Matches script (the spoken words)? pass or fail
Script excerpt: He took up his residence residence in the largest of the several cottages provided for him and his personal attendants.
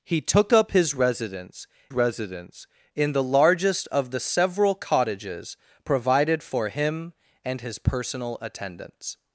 pass